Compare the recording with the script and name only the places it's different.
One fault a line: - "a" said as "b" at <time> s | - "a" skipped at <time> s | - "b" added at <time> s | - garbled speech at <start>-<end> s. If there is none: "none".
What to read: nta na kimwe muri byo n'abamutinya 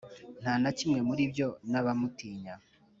none